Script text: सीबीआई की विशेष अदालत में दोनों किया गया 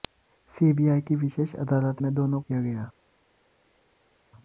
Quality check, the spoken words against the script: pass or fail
pass